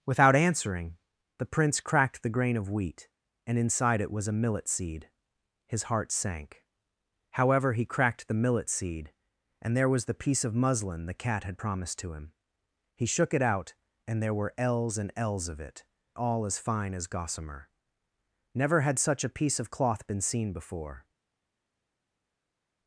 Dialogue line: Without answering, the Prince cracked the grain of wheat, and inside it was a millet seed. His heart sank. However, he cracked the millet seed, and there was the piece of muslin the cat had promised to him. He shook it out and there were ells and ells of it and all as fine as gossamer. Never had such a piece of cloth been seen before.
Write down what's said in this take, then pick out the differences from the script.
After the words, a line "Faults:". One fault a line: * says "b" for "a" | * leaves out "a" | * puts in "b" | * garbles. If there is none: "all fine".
Without answering, the Prince cracked the grain of wheat, and inside it was a millet seed. His heart sank. However, he cracked the millet seed, and there was the piece of muslin the cat had promised to him. He shook it out and there were ells and ells of it all as fine as gossamer. Never had such a piece of cloth been seen before.
Faults:
* leaves out "and"